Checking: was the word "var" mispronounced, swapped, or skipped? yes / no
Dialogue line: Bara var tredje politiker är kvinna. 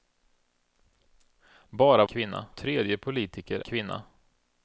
yes